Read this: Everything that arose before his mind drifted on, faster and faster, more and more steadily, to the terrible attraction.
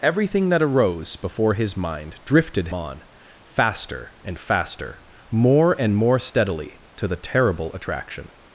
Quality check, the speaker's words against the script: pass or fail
pass